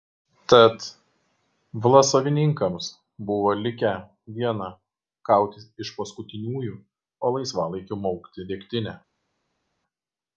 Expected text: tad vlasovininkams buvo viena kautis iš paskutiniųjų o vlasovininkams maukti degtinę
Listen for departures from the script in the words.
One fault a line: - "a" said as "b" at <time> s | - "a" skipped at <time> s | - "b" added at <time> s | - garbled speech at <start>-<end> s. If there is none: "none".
- "likę" added at 3.6 s
- "vlasovininkams" said as "laisvalaikiu" at 7.4 s